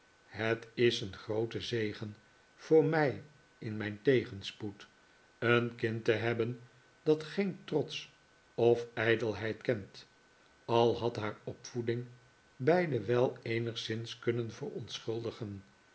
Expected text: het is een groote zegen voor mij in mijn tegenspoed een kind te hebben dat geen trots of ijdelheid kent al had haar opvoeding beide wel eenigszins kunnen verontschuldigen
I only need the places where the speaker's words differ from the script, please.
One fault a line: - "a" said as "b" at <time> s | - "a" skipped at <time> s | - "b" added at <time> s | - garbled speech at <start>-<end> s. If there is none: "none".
none